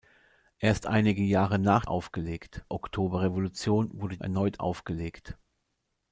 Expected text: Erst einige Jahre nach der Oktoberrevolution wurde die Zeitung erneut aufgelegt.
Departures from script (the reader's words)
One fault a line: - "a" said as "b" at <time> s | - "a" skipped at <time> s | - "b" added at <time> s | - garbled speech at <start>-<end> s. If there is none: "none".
- "der" said as "aufgelegt" at 1.9 s
- "die Zeitung" skipped at 4.2 s